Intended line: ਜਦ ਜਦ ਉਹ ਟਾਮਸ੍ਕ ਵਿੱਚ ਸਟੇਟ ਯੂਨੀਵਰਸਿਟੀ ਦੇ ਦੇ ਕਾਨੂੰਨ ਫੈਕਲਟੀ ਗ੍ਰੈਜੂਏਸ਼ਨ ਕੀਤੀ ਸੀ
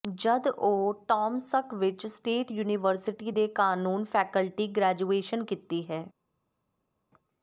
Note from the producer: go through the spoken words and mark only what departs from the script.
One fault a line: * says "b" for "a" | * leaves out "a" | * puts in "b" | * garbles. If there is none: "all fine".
* leaves out "ਜਦ"
* leaves out "ਦੇ"
* says "ਹੈ" for "ਸੀ"